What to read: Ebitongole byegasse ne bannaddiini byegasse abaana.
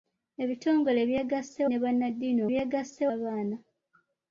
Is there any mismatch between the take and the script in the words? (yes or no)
no